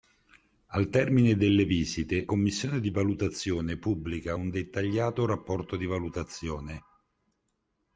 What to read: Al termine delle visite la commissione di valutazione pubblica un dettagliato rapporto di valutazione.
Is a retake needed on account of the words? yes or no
yes